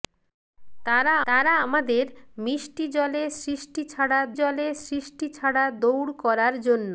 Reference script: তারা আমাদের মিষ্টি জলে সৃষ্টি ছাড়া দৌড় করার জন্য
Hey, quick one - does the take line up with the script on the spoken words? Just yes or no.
no